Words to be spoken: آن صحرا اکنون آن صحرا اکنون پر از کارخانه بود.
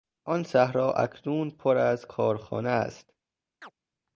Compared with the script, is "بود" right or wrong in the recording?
wrong